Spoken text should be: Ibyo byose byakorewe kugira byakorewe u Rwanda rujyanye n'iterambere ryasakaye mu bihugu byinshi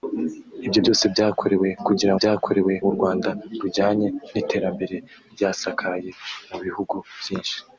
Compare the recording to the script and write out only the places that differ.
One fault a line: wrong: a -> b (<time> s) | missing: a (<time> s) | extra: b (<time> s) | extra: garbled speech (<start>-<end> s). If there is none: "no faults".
no faults